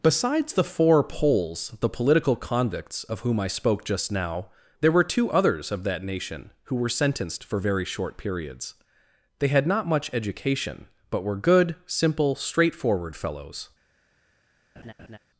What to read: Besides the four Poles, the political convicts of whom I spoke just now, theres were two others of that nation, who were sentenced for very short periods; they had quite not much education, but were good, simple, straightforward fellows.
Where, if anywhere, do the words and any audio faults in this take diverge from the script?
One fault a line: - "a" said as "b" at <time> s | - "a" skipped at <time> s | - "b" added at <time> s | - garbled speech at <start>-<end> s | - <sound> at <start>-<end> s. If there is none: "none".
- "theres" said as "there" at 4.8 s
- "quite" skipped at 9.7 s
- laugh at 14.8-15.2 s